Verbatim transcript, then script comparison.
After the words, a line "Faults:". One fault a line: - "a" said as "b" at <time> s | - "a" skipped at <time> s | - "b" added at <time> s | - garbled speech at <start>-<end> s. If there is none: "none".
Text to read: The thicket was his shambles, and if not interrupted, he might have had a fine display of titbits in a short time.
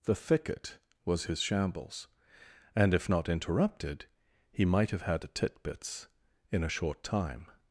The thicket was his shambles, and if not interrupted, he might have had a titbits in a short time.
Faults:
- "fine display of" skipped at 5.3 s